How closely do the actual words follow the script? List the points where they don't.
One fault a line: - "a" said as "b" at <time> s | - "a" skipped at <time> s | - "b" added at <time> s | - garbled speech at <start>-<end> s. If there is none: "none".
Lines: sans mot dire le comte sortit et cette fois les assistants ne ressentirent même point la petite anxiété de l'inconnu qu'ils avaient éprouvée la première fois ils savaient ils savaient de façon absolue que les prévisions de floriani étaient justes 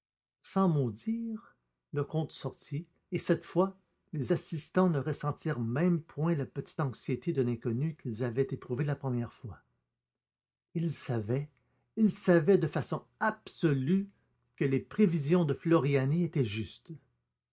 none